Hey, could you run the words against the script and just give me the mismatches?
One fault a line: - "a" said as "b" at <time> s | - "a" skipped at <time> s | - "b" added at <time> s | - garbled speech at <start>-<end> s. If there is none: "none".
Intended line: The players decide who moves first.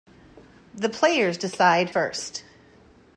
- "who moves" skipped at 1.9 s